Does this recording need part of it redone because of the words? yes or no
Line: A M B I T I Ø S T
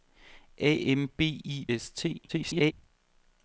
yes